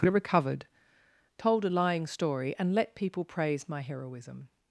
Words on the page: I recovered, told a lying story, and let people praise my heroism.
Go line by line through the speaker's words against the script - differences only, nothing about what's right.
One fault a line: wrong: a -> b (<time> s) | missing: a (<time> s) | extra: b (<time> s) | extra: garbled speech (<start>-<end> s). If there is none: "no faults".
missing: I (0.1 s)